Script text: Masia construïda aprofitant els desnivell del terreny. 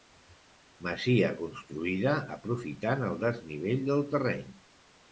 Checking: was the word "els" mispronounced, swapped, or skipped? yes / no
yes